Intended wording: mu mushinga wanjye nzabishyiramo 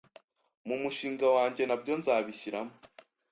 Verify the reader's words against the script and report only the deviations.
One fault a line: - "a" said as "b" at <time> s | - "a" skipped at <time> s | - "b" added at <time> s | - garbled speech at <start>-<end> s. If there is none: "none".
- "nabyo" added at 1.7 s